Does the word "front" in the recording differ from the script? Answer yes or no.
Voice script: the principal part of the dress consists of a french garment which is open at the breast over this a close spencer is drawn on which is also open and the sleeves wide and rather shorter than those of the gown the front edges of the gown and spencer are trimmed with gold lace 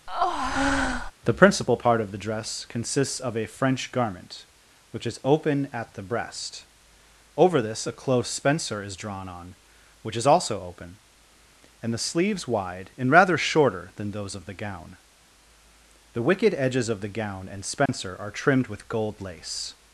yes